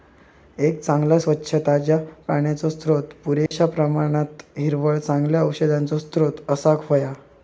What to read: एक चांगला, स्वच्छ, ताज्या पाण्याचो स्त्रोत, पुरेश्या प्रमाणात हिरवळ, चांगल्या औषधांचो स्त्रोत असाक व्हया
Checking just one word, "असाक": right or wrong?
right